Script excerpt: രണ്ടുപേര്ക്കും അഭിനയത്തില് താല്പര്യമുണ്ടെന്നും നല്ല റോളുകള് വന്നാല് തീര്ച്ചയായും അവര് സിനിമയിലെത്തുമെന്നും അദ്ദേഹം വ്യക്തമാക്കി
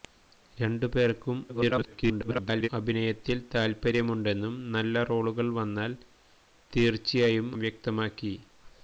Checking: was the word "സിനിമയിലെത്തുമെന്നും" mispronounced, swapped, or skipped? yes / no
yes